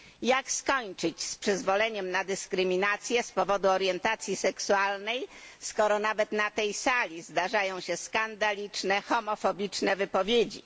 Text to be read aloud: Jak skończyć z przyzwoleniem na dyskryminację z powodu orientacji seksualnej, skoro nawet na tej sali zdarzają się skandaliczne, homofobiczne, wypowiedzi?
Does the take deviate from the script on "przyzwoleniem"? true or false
false